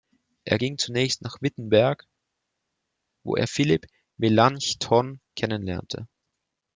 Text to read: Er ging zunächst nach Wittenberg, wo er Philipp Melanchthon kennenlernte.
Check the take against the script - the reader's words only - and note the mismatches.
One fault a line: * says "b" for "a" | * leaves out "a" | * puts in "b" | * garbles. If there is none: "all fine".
all fine